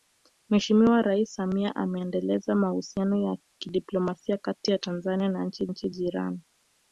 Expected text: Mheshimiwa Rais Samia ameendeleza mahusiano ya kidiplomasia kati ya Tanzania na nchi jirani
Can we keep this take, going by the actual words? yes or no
no